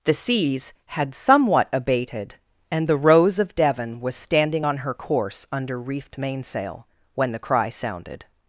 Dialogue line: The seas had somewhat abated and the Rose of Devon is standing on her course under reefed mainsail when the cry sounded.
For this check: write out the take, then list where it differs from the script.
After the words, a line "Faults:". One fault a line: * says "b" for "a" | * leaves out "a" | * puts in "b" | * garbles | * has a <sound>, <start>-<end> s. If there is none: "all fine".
The seas had somewhat abated and the Rose of Devon was standing on her course under reefed mainsail when the cry sounded.
Faults:
* says "was" for "is"